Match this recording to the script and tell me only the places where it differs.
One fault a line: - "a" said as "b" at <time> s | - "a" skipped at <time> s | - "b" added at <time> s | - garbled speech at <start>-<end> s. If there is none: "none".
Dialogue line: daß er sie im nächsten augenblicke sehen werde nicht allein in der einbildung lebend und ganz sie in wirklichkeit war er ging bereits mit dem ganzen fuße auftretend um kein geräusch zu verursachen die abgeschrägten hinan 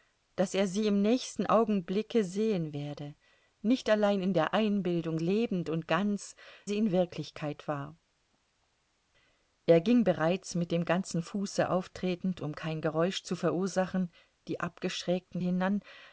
none